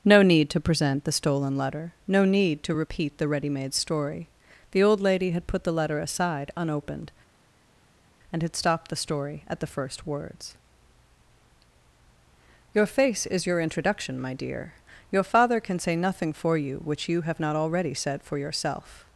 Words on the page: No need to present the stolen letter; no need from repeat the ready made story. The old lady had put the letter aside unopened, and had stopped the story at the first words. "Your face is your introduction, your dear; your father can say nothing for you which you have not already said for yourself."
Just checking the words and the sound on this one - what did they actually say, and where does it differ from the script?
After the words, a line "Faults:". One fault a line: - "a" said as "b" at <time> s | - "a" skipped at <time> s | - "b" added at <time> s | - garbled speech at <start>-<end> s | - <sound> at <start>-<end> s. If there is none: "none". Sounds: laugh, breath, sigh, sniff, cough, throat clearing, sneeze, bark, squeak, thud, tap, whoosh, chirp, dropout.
No need to present the stolen letter; no need to repeat the ready made story. The old lady had put the letter aside unopened, and had stopped the story at the first words. "Your face is your introduction, my dear; your father can say nothing for you which you have not already said for yourself."
Faults:
- "from" said as "to" at 2.6 s
- "your" said as "my" at 14.2 s